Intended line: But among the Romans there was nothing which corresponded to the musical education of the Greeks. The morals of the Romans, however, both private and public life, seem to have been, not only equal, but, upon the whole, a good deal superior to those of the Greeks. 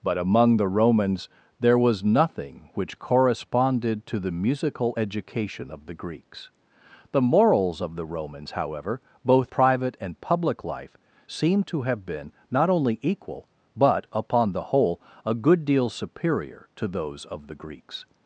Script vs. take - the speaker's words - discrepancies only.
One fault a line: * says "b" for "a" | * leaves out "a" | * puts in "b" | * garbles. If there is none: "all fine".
all fine